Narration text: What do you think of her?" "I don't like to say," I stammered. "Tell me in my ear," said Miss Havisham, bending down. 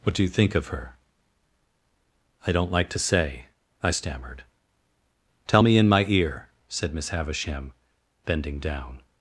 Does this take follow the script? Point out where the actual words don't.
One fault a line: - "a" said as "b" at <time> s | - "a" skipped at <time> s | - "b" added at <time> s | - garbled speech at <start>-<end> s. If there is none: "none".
none